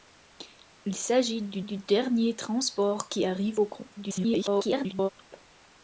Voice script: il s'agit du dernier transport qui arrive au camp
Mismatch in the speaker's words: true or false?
true